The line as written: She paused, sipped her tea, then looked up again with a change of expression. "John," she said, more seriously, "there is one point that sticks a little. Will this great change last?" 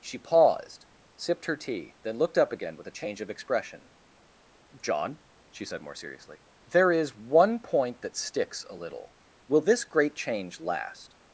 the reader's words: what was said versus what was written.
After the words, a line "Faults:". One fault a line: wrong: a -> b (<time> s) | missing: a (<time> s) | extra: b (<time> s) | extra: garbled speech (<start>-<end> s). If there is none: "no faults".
She paused, sipped her tea, then looked up again with a change of expression. "John," she said, more seriously, "there is one point that sticks a little. Will this great change last?"
Faults:
no faults